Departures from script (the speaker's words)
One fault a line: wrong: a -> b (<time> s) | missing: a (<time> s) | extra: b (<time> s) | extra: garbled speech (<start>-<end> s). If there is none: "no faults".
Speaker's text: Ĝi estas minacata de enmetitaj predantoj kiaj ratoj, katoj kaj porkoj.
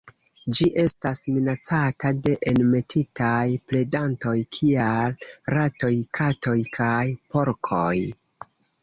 no faults